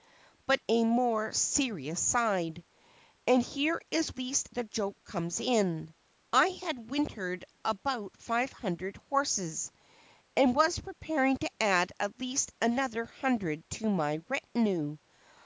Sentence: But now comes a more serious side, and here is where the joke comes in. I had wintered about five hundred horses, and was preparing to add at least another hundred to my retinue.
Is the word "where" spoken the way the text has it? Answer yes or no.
no